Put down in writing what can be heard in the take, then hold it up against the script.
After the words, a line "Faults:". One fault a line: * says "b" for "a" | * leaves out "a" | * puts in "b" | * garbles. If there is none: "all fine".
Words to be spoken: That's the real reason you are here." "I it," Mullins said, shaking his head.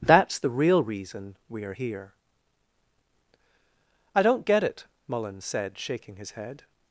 That's the real reason we are here." "I don't get it," Mullins said, shaking his head.
Faults:
* says "we" for "you"
* puts in "don't get"